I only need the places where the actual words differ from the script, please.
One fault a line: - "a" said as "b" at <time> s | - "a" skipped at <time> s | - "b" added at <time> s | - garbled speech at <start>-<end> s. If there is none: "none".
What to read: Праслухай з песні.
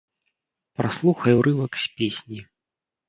- "урывак" added at 1.4 s